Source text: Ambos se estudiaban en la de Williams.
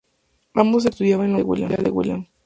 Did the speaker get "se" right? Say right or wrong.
right